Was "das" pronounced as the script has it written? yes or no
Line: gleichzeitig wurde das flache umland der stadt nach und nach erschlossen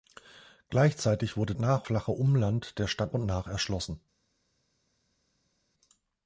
no